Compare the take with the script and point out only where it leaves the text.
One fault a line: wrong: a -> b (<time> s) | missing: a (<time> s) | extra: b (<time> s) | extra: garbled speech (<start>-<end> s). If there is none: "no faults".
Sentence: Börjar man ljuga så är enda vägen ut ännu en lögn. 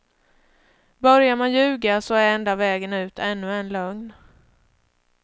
no faults